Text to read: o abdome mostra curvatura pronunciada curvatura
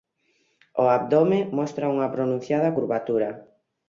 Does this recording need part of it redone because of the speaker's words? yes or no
yes